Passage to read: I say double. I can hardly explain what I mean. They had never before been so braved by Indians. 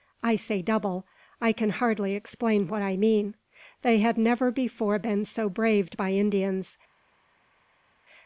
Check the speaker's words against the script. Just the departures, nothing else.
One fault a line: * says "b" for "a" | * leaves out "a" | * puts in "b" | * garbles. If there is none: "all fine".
all fine